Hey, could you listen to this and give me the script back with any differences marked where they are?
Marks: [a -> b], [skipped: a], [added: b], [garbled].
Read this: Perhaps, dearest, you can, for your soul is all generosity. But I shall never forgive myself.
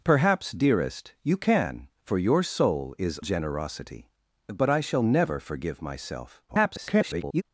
Perhaps, dearest, you can, for your soul is [skipped: all] generosity. But I shall never forgive myself. [garbled]